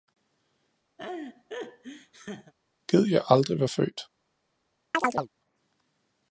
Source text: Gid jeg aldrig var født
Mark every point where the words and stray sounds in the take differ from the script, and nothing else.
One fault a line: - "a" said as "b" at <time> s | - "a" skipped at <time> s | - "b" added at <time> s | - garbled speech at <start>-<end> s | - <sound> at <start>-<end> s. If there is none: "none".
- laugh at 1.0-2.5 s
- chirp at 4.9-5.3 s